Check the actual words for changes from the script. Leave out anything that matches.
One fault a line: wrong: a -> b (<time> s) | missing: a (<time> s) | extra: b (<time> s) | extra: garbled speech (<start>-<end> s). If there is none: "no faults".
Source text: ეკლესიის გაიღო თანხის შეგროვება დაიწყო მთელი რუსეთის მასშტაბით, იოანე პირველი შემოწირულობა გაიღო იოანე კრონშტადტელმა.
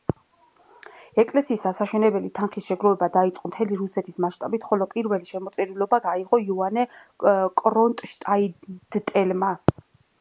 wrong: გაიღო -> ასაშენებელი (1.7 s)
wrong: იოანე -> ხოლო (4.7 s)